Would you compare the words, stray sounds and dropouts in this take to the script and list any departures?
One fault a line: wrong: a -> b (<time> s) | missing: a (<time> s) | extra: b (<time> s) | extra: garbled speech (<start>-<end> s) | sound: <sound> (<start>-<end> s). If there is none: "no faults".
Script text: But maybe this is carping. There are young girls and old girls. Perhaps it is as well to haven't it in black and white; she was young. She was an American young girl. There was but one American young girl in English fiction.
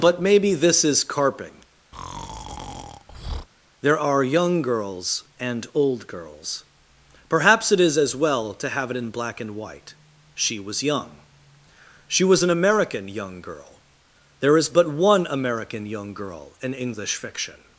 sound: breath (1.9-3.5 s)
wrong: haven't -> have (8.7 s)
wrong: was -> is (14.6 s)